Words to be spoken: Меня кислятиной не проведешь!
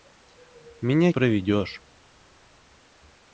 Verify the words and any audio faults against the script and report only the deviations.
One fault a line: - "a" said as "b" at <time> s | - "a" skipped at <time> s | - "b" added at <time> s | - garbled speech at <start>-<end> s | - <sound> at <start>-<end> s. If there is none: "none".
- "кислятиной не" skipped at 1.1 s